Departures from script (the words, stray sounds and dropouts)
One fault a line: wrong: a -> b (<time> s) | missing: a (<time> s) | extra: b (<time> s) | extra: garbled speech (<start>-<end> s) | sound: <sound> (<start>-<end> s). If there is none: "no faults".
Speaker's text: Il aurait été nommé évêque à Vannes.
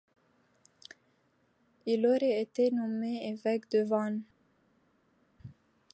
wrong: à -> de (3.7 s)